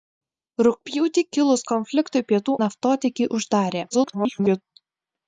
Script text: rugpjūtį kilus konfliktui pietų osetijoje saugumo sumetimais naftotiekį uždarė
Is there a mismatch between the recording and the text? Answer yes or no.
yes